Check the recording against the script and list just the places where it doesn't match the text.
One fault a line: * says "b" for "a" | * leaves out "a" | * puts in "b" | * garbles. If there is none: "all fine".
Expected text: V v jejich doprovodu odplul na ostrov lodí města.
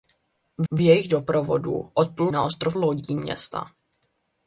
all fine